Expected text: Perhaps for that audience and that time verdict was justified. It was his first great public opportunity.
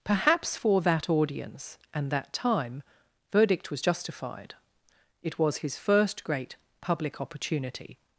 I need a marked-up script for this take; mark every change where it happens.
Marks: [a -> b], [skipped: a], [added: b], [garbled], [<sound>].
Perhaps for that audience and that time verdict was justified. It was his first great public opportunity.